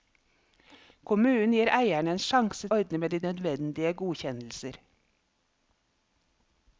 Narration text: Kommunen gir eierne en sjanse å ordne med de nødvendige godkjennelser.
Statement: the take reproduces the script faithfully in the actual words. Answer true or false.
true